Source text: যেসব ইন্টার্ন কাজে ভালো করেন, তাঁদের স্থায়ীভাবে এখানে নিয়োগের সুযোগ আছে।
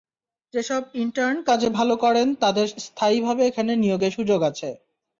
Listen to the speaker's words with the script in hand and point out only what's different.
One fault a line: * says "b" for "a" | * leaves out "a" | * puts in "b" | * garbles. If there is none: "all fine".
all fine